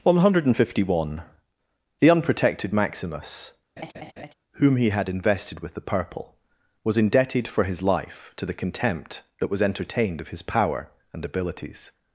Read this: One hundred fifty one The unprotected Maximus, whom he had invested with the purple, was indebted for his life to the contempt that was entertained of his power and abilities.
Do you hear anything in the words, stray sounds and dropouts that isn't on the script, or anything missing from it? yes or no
yes